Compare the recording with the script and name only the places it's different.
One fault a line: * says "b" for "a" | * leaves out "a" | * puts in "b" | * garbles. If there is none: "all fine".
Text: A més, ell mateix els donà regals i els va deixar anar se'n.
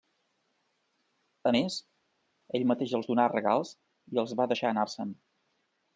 all fine